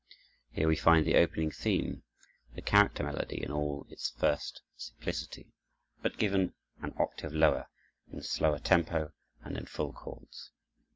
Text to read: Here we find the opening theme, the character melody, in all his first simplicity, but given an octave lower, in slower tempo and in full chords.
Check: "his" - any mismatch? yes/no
yes